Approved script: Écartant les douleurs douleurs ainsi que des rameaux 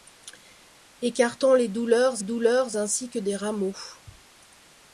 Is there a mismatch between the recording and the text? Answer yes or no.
no